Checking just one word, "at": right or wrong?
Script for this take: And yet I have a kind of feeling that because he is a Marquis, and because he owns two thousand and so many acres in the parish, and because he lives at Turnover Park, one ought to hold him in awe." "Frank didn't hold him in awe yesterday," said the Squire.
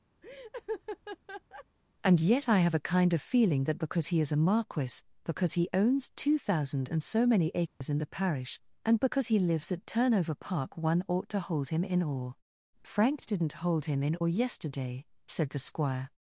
right